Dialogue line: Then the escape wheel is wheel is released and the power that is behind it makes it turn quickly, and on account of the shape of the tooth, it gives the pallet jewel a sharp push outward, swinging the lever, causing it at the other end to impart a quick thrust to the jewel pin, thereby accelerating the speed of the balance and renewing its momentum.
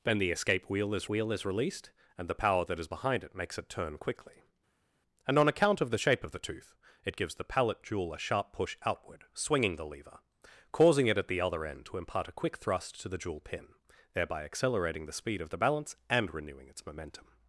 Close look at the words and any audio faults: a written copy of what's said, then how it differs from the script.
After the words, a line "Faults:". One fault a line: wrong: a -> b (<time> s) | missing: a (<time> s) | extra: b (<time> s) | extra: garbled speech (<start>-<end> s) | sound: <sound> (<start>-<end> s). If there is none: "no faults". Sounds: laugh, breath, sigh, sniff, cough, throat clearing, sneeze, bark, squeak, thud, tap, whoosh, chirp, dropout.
Then the escape wheel is wheel is released and the power that is behind it makes it turn quickly, and on account of the shape of the tooth, it gives the pallet jewel a sharp push outward, swinging the lever, causing it at the other end to impart a quick thrust to the jewel pin, thereby accelerating the speed of the balance and renewing its momentum.
Faults:
no faults